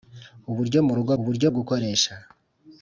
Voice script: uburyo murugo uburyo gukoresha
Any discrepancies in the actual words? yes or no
no